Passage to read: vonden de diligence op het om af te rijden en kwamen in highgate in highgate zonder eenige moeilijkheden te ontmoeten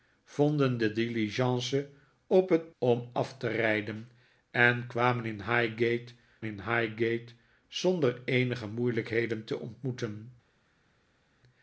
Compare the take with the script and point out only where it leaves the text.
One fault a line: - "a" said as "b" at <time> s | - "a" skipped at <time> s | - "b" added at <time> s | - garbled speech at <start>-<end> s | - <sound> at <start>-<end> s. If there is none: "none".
none